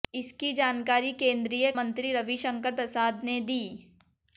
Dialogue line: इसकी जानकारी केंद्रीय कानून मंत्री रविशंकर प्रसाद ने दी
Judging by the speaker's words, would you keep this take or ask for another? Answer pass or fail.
fail